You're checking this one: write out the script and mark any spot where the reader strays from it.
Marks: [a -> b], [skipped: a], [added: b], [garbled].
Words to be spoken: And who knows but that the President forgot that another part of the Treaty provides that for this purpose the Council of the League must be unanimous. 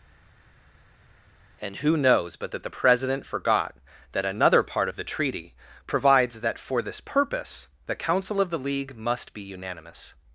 And who knows but that the President forgot that another part of the Treaty provides that for this purpose the Council of the League must be unanimous.